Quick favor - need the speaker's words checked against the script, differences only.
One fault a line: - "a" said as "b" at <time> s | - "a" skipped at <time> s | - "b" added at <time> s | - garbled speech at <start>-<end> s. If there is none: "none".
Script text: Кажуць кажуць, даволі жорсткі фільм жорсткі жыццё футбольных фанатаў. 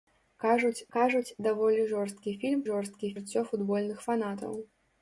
none